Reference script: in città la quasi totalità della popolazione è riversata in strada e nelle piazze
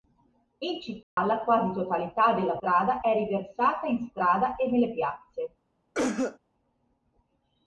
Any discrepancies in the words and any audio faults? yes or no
yes